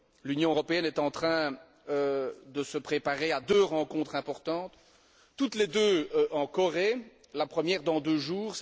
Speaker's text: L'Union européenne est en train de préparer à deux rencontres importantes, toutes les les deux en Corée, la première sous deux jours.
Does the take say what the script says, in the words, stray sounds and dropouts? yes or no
no